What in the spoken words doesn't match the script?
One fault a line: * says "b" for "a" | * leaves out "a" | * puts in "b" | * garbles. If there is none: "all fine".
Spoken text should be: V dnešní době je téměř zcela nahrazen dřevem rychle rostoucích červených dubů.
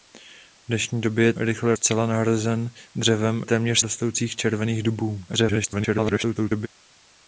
* says "rychle" for "téměř"
* says "téměř" for "rychle"
* garbles